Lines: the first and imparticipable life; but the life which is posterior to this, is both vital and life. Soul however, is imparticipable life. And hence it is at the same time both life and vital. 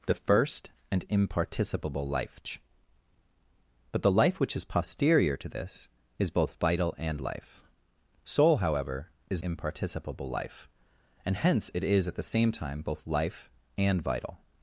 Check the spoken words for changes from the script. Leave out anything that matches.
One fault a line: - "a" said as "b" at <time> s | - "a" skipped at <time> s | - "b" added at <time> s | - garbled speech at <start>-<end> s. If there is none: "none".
none